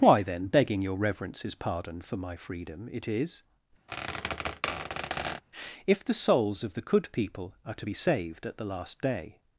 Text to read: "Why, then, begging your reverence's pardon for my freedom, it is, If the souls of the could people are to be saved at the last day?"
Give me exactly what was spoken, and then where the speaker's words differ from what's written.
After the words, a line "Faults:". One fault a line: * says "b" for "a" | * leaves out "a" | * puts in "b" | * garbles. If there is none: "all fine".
"Why, then, begging your reverence's pardon for my freedom, it is, If the souls of the could people are to be saved at the last day?"
Faults:
all fine